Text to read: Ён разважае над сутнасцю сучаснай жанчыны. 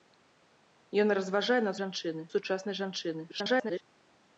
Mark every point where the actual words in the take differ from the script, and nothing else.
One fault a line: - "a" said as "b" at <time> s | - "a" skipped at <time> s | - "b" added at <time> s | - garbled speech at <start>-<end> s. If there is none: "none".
- "сутнасцю" said as "жанчыны" at 1.8 s
- garbled speech at 3.3-3.8 s